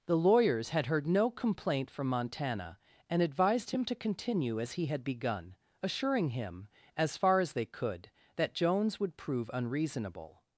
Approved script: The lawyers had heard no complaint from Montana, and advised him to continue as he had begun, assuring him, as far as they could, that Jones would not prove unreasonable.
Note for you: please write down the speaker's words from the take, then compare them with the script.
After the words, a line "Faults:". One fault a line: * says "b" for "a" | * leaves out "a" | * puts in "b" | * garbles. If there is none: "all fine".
The lawyers had heard no complaint from Montana, and advised him to continue as he had begun, assuring him, as far as they could, that Jones would prove unreasonable.
Faults:
* leaves out "not"